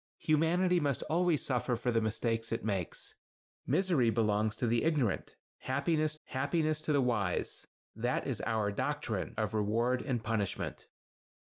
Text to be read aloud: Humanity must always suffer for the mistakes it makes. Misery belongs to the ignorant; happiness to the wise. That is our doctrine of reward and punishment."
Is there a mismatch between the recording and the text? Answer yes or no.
yes